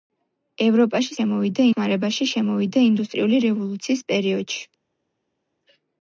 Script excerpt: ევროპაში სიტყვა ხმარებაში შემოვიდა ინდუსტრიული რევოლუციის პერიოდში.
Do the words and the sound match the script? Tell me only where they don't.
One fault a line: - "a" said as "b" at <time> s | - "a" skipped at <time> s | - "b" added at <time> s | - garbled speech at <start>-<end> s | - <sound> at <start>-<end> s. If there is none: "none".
- "სიტყვა" said as "შემოვიდა" at 1.1 s